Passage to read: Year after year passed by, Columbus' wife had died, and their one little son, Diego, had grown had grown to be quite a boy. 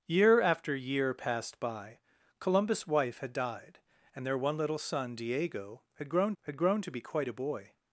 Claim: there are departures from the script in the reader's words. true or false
false